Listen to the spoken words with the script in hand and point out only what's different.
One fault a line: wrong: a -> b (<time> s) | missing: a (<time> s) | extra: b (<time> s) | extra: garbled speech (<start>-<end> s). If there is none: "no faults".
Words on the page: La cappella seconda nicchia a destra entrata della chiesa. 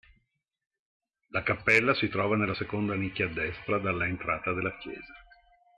extra: si trova nella (1.9 s)
extra: dalla (3.8 s)